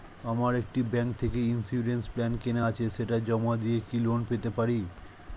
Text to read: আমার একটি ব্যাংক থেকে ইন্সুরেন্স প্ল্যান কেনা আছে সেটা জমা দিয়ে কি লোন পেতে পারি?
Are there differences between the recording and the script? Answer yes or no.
no